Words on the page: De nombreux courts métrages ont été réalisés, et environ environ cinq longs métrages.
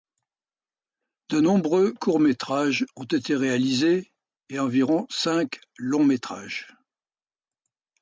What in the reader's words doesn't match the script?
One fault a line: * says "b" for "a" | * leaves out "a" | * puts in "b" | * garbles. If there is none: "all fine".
* leaves out "environ"